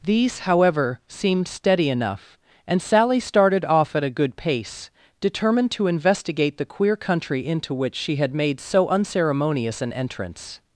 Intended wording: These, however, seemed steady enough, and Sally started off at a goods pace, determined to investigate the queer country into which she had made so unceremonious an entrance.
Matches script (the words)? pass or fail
fail